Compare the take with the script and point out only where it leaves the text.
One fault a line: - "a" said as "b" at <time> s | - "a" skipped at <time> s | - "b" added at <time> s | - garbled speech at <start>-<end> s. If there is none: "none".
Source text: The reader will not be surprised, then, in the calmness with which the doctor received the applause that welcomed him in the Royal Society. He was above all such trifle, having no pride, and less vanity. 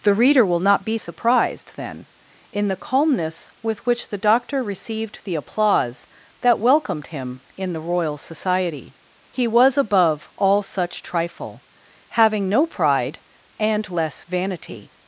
none